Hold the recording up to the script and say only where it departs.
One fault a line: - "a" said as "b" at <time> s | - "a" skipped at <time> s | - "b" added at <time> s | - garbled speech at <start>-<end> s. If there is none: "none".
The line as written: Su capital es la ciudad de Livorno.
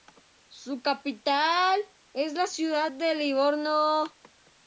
none